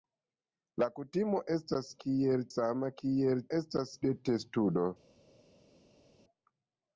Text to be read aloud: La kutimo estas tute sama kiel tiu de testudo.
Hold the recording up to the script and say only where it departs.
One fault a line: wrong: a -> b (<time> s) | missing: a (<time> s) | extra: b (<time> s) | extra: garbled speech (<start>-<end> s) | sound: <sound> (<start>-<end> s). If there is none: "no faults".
wrong: tute -> kiel (2.1 s)
wrong: tiu -> estas (3.6 s)